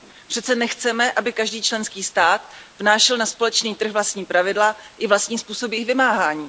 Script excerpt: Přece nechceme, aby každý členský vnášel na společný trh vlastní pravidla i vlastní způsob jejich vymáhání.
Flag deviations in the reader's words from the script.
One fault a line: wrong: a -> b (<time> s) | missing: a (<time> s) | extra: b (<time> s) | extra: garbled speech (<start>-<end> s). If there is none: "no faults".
extra: stát (2.0 s)